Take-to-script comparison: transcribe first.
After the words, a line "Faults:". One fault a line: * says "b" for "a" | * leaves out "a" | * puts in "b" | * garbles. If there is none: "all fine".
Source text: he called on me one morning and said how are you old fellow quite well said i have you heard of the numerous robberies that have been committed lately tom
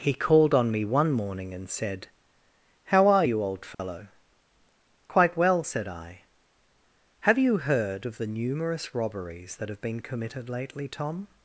he called on me one morning and said how are you old fellow quite well said i have you heard of the numerous robberies that have been committed lately tom
Faults:
all fine